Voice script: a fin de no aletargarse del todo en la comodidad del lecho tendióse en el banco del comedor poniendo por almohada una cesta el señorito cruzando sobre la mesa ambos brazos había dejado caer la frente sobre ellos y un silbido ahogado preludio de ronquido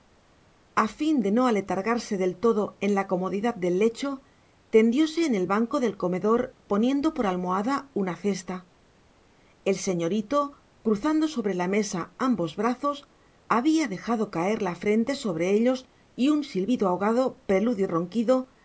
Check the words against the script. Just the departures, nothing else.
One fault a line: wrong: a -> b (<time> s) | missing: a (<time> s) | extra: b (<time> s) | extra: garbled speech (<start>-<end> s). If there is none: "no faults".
missing: de (17.9 s)